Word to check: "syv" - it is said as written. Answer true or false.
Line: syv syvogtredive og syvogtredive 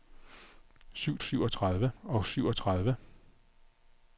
true